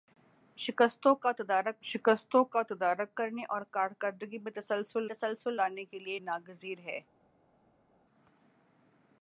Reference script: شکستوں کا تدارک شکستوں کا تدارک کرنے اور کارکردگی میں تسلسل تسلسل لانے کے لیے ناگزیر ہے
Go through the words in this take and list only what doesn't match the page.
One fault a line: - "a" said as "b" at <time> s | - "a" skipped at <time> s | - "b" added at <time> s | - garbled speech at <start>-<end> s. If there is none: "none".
none